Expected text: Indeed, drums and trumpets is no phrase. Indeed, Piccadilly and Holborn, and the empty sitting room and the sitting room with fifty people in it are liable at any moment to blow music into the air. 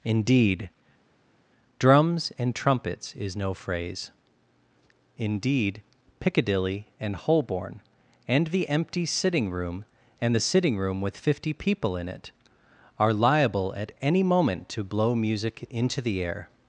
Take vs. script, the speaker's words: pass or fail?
pass